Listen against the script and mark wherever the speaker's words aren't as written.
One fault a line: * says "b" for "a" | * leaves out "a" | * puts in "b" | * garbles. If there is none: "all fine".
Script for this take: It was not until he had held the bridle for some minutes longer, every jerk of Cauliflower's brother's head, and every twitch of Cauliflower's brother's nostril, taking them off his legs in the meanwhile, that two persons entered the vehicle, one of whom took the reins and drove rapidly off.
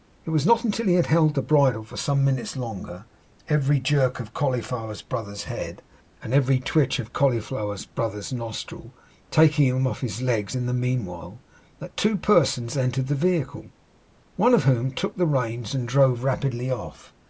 * says "him" for "them"